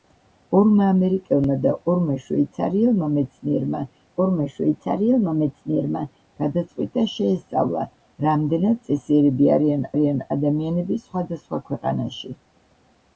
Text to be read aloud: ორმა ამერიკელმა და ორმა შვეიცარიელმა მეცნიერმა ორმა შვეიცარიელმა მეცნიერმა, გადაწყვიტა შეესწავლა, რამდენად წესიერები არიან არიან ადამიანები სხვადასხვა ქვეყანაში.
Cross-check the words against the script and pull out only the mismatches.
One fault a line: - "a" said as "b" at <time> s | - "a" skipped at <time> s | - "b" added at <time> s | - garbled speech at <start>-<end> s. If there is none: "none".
none